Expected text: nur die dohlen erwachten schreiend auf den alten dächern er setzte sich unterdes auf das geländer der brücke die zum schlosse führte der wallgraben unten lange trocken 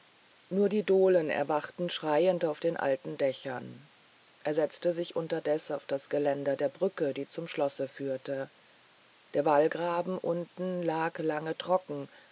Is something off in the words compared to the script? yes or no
yes